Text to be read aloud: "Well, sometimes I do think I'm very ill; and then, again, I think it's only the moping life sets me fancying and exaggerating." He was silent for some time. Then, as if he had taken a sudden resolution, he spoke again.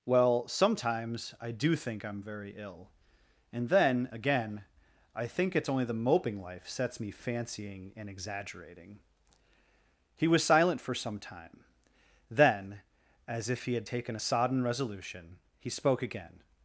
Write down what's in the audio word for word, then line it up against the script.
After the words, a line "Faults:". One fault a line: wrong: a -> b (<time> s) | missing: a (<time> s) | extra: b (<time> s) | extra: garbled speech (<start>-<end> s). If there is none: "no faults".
"Well, sometimes I do think I'm very ill; and then, again, I think it's only the moping life sets me fancying and exaggerating." He was silent for some time. Then, as if he had taken a sodden resolution, he spoke again.
Faults:
wrong: sudden -> sodden (14.2 s)